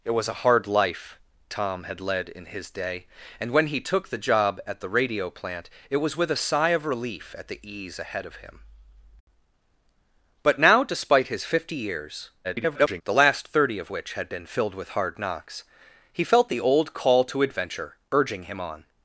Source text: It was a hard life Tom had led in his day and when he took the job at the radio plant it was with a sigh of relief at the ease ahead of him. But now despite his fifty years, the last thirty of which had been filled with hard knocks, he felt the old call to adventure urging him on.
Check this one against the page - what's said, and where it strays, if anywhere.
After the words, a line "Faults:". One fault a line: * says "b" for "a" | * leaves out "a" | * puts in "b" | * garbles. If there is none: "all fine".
It was a hard life Tom had led in his day and when he took the job at the radio plant it was with a sigh of relief at the ease ahead of him. But now despite his fifty years, [garbled] the last thirty of which had been filled with hard knocks, he felt the old call to adventure urging him on.
Faults:
* garbles